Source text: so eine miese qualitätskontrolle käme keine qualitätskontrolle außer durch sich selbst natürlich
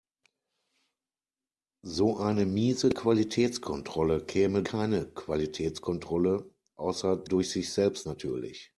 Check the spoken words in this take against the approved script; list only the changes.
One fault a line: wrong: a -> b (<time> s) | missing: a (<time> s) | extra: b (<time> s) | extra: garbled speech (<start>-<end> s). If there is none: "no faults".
no faults